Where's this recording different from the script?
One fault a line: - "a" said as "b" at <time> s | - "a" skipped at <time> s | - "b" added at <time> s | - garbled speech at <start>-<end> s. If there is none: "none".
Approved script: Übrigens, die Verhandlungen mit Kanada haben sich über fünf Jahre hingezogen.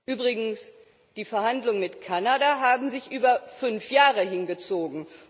none